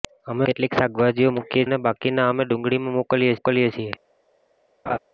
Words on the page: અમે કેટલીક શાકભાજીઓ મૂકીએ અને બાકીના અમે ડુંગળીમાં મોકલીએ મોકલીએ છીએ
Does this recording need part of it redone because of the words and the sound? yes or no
yes